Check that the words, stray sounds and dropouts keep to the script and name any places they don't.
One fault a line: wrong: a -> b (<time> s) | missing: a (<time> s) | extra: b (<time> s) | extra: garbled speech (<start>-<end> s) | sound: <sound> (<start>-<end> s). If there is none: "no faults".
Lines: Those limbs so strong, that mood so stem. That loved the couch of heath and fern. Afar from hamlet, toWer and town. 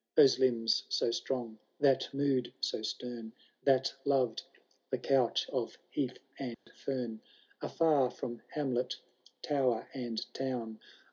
sound: dropout (6.5-6.7 s)